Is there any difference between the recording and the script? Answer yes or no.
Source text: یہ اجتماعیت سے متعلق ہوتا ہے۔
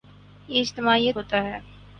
yes